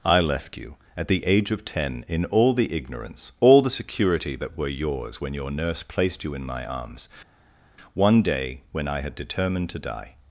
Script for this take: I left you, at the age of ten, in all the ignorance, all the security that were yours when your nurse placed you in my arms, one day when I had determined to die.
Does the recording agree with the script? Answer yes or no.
yes